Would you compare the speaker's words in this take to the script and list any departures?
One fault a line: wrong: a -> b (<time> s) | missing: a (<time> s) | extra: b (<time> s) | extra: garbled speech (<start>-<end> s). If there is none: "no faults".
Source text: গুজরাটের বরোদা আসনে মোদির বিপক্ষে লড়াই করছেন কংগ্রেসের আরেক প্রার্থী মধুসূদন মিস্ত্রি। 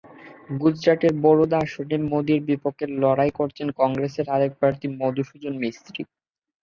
no faults